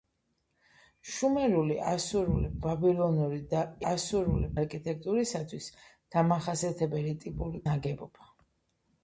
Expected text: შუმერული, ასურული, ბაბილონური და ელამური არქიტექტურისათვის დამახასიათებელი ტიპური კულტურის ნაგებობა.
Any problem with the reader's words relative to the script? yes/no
yes